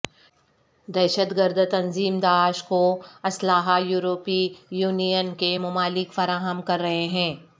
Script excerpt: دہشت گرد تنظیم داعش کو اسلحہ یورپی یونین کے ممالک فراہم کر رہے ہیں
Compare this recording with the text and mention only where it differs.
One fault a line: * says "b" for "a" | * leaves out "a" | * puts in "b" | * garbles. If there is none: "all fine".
all fine